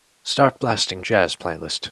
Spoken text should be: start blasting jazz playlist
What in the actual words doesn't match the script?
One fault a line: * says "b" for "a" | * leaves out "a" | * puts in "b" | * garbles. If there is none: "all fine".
all fine